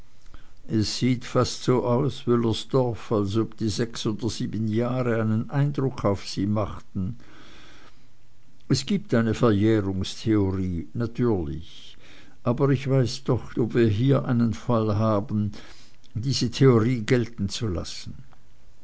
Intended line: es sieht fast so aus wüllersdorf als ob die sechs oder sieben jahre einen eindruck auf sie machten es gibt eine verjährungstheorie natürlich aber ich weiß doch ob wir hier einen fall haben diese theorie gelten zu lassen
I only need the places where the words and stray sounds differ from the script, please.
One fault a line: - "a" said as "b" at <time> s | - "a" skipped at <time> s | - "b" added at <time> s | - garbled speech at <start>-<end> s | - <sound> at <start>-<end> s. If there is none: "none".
none